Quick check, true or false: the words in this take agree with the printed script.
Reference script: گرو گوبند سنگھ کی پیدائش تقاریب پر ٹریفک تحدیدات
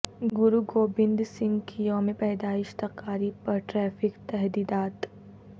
false